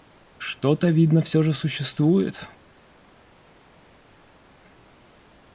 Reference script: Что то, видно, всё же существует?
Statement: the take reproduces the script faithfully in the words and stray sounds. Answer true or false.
true